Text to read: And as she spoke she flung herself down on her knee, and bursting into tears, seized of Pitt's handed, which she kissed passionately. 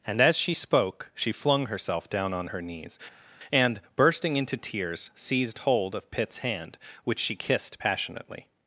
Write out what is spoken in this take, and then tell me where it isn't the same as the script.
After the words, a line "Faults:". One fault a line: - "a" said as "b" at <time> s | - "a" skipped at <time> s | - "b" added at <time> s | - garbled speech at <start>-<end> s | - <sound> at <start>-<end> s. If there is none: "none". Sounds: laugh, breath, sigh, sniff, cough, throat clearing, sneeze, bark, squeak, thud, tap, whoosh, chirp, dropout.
And as she spoke she flung herself down on her knees, and bursting into tears, seized hold of Pitt's hand, which she kissed passionately.
Faults:
- "knee" said as "knees" at 2.6 s
- "hold" added at 5.6 s
- "handed" said as "hand" at 6.4 s